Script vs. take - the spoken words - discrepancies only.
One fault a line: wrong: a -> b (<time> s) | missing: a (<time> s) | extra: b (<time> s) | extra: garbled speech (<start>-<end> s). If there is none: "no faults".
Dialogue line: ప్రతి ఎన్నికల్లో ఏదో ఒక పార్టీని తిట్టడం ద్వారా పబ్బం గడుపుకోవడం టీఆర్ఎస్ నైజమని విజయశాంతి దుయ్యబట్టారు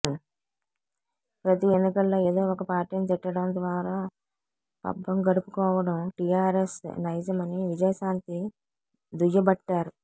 no faults